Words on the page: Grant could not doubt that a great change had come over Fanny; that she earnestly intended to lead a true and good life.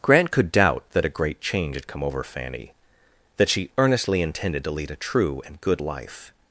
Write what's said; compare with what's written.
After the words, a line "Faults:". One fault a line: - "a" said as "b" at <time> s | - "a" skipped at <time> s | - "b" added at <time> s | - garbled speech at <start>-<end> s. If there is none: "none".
Grant could doubt that a great change had come over Fanny; that she earnestly intended to lead a true and good life.
Faults:
- "not" skipped at 0.5 s